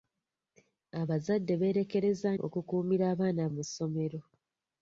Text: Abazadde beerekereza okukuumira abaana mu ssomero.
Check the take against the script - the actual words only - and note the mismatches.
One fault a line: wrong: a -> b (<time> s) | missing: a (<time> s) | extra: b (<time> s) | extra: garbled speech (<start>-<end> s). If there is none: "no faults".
no faults